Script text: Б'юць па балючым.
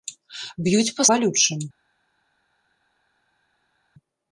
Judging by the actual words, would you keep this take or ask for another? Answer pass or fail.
pass